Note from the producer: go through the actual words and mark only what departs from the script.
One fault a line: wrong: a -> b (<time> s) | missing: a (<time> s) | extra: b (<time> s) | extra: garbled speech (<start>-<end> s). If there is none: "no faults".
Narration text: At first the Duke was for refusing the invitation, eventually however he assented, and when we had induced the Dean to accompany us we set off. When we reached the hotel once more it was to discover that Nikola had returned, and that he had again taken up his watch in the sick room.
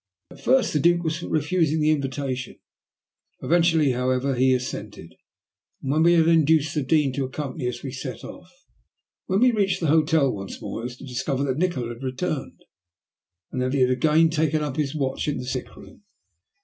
no faults